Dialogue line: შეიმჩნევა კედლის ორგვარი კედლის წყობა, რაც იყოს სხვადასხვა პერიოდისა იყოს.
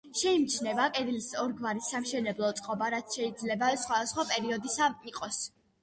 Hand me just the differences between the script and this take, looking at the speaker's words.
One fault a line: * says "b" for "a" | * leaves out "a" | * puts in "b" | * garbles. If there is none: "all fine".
* says "სამშენებლო" for "კედლის"
* says "შეიძლება" for "იყოს"